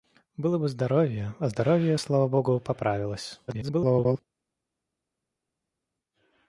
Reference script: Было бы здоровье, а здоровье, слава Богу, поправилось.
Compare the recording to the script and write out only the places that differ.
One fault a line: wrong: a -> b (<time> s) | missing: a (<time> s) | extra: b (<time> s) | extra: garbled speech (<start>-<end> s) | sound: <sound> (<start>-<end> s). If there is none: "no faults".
extra: garbled speech (3.5-4.2 s)